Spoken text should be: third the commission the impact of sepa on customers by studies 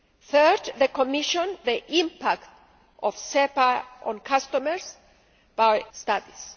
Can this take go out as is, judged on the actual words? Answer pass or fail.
pass